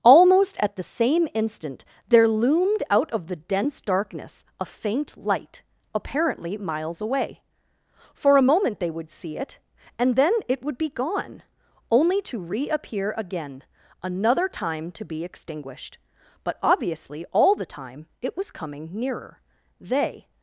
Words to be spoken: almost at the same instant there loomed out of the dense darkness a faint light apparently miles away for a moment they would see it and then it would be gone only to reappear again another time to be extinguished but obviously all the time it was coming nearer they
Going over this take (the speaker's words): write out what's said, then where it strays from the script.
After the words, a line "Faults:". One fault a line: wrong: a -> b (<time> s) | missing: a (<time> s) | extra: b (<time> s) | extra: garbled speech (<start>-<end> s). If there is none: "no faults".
almost at the same instant there loomed out of the dense darkness a faint light apparently miles away for a moment they would see it and then it would be gone only to reappear again another time to be extinguished but obviously all the time it was coming nearer they
Faults:
no faults